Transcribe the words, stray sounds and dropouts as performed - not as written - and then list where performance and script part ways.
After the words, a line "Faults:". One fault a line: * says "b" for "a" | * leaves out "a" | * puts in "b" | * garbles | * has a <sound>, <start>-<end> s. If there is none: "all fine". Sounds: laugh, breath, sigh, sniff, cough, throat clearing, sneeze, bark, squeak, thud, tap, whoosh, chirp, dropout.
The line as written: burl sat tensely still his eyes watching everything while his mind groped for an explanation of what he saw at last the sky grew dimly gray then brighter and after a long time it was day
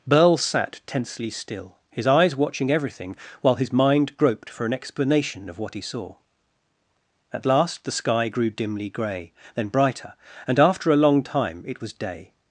burl sat tensely still his eyes watching everything while his mind groped for an explanation of what he saw at last the sky grew dimly gray then brighter and after a long time it was day
Faults:
all fine